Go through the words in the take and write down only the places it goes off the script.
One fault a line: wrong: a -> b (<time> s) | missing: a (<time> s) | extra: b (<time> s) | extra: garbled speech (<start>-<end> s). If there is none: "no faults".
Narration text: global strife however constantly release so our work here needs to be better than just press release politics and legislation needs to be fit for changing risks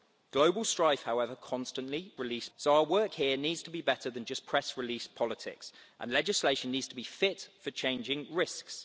no faults